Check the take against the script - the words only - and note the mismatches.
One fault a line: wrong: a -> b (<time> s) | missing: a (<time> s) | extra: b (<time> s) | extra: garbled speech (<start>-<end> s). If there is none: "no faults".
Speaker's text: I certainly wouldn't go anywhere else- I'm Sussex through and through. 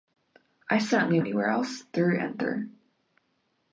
missing: wouldn't go (1.2 s)
missing: I'm Sussex (1.9 s)